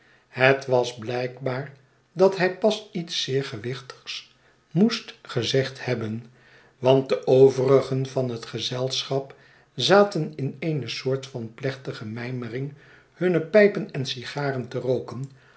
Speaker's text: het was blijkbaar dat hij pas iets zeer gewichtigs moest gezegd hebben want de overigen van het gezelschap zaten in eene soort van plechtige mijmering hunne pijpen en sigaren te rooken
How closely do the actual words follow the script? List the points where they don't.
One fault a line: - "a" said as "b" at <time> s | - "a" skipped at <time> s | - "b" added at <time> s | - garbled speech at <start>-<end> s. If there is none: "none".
none